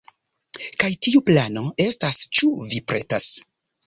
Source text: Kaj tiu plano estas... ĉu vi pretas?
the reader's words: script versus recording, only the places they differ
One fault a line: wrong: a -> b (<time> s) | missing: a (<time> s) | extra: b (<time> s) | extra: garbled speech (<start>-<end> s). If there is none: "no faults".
no faults